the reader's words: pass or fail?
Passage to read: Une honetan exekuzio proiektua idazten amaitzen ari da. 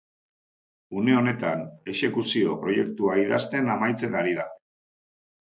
pass